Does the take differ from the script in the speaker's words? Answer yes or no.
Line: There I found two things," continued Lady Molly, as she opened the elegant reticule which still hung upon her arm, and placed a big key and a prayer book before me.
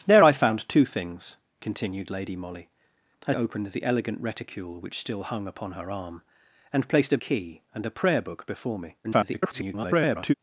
yes